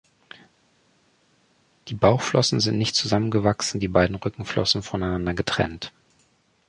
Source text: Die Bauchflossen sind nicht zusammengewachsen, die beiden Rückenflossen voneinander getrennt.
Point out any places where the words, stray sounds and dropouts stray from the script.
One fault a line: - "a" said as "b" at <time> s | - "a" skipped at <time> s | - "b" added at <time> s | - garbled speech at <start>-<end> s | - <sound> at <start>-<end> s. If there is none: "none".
none